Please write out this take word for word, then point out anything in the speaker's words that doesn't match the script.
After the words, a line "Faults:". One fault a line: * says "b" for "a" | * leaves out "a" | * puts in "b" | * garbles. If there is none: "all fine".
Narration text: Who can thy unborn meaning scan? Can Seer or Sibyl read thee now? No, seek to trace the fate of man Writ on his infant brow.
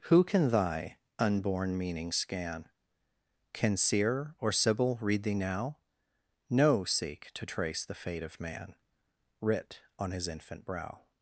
Who can thy unborn meaning scan? Can Seer or Sibyl read thee now? No, seek to trace the fate of man Writ on his infant brow.
Faults:
all fine